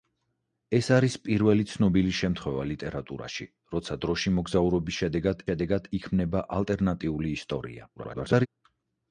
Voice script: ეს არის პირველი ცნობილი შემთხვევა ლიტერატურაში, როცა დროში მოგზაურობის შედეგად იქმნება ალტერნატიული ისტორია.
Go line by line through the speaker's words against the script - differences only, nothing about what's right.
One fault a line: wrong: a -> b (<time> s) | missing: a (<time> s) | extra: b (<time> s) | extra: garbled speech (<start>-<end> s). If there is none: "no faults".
extra: შედეგად (5.5 s)
extra: garbled speech (8.0-8.5 s)